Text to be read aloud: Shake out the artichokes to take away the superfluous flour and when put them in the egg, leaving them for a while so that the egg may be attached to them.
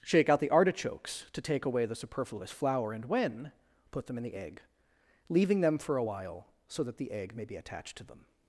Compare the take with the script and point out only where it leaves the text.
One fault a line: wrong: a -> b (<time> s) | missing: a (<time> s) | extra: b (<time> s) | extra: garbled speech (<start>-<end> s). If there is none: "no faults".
no faults